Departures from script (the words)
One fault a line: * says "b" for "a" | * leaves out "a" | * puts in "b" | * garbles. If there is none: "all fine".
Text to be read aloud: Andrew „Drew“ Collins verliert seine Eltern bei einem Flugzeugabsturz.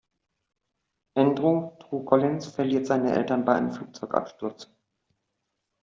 all fine